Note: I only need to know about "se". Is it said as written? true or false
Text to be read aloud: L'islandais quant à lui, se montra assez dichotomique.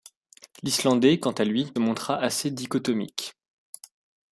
false